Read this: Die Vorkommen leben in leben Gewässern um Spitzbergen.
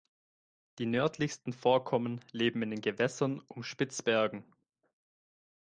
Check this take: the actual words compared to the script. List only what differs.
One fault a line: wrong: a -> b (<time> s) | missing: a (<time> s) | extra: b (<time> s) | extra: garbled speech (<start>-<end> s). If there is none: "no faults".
extra: nördlichsten (0.9 s)
wrong: leben -> den (2.7 s)